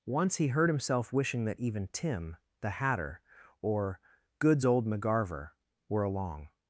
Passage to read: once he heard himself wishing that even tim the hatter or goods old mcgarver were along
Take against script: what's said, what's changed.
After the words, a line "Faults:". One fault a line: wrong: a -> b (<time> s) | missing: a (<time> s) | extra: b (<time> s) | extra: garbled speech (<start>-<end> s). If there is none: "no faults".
once he heard himself wishing that even tim the hatter or goods old mcgarver were along
Faults:
no faults